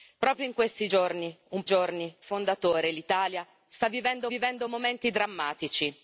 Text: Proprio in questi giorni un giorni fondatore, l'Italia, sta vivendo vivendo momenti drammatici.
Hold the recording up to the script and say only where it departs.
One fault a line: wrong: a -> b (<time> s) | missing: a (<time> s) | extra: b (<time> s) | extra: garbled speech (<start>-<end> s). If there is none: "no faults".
no faults